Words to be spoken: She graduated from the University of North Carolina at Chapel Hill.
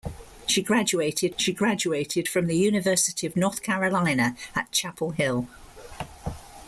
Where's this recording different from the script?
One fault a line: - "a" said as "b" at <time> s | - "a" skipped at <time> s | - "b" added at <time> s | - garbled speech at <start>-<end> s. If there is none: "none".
- "she graduated" added at 1.4 s